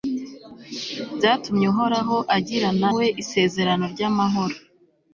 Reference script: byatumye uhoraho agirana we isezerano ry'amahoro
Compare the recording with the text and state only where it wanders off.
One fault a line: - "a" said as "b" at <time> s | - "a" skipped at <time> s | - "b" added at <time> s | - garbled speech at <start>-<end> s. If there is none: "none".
none